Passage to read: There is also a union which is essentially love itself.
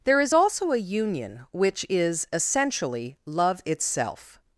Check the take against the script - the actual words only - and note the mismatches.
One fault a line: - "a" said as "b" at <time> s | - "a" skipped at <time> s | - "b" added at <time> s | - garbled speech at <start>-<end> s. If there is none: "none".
none